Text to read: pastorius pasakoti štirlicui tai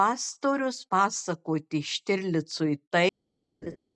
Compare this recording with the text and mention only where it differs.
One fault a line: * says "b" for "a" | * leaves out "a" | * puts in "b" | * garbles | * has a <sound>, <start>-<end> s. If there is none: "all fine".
* has a laugh, 3.6-3.8 s